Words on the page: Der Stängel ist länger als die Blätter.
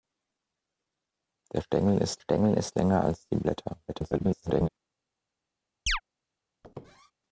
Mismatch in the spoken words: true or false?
true